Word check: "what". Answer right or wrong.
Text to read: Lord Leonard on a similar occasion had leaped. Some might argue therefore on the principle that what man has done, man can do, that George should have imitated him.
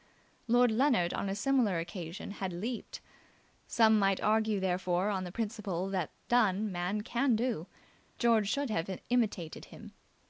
wrong